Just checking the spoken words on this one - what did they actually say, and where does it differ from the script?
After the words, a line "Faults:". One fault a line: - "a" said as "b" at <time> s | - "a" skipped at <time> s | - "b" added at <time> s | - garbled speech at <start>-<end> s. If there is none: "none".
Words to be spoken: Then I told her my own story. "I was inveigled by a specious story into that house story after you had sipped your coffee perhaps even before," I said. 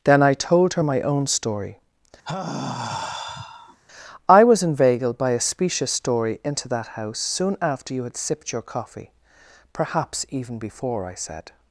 Then I told her my own story. "I was inveigled by a specious story into that house soon after you had sipped your coffee perhaps even before," I said.
Faults:
- "story" said as "soon" at 7.2 s